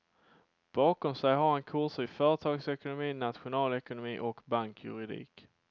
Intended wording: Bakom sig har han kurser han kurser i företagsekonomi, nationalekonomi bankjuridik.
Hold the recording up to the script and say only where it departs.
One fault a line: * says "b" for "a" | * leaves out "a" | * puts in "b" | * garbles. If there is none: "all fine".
* leaves out "han kurser"
* puts in "och"